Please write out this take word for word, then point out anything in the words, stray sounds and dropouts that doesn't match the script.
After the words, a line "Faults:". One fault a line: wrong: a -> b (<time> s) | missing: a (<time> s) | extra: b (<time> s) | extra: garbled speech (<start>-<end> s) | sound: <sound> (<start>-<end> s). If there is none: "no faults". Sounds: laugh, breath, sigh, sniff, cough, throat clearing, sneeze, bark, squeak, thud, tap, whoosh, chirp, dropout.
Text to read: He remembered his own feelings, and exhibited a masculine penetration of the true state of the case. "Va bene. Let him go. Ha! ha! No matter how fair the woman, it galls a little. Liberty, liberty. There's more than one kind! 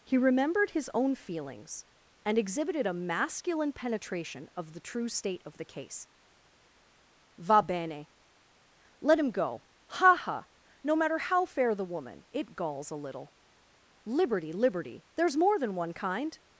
He remembered his own feelings, and exhibited a masculine penetration of the true state of the case. "Va bene. Let him go. Ha! ha! No matter how fair the woman, it galls a little. Liberty, liberty. There's more than one kind!
Faults:
no faults